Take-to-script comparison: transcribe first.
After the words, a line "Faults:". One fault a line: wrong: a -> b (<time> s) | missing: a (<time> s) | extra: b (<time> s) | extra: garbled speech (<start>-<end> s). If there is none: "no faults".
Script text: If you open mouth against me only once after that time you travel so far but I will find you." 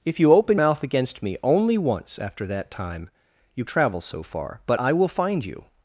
If you open mouth against me only once after that time you travel so far but I will find you."
Faults:
no faults